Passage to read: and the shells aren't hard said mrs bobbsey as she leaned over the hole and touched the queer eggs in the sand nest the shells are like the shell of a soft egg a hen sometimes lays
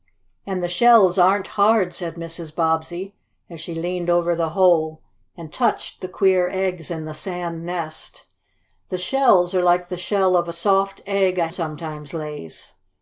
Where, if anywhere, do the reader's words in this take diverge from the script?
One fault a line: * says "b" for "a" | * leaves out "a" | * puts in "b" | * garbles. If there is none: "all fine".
* leaves out "hen"